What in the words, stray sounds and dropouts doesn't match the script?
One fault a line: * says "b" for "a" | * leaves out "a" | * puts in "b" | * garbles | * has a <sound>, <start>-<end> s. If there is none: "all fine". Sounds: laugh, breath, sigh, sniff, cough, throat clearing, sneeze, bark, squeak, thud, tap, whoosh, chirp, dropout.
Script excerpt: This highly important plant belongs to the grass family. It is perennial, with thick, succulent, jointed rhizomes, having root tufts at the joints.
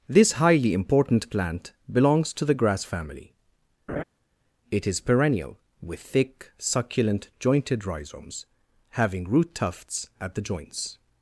* has a laugh, 3.9-4.0 s